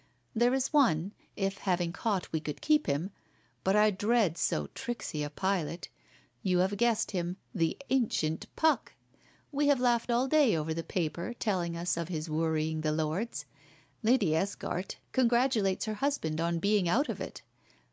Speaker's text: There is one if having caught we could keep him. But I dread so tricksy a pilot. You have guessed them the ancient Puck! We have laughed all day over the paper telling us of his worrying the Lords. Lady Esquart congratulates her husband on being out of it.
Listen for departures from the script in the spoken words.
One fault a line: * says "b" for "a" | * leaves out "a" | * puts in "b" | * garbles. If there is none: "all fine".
* says "him" for "them"